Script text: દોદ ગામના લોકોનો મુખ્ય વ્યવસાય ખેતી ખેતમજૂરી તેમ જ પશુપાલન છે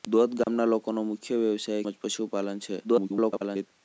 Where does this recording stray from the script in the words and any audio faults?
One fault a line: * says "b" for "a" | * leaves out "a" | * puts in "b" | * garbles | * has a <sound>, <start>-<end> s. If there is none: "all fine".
* has a dropout, 0.4-0.5 s
* leaves out "ખેતી ખેતમજૂરી તેમ"
* garbles